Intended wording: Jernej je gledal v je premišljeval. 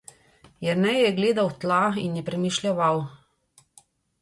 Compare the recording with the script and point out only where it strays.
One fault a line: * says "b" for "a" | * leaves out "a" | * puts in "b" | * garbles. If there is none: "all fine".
* puts in "tla in"